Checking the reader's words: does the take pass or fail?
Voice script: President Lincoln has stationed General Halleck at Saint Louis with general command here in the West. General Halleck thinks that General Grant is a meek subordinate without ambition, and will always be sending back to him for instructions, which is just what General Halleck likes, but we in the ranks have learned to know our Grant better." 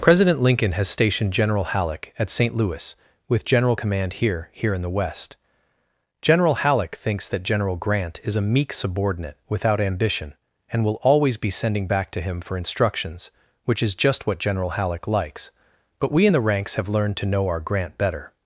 fail